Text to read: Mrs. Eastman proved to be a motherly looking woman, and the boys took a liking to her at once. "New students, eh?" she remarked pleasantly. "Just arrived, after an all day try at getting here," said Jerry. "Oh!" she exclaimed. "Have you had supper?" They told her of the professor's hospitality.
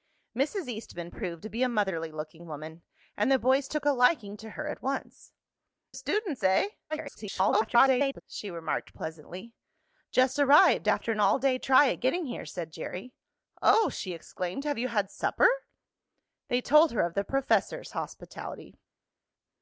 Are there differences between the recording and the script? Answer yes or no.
yes